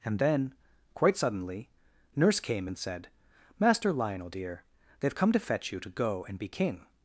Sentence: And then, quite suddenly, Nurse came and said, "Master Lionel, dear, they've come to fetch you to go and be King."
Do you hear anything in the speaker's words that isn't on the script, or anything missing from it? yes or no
no